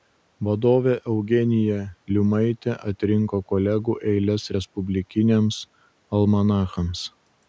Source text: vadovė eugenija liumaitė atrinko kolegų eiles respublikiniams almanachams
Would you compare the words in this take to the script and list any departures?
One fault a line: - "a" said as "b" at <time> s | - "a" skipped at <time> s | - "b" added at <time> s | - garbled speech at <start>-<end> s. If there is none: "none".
none